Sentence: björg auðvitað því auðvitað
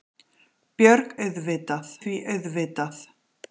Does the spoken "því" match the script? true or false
true